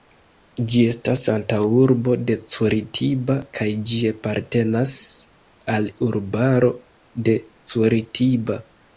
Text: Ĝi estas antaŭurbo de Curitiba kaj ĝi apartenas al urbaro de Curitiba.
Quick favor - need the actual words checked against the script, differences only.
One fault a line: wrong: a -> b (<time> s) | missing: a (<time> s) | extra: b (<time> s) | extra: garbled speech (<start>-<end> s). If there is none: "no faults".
no faults